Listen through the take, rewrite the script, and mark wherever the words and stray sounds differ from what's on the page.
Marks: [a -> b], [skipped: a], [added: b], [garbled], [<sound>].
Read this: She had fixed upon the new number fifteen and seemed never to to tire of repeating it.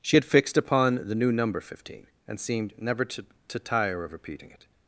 She had fixed upon the new number fifteen and seemed never to to tire of repeating it.